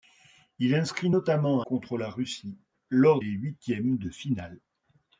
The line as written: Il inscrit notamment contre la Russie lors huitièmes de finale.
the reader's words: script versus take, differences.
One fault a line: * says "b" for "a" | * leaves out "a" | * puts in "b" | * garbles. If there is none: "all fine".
all fine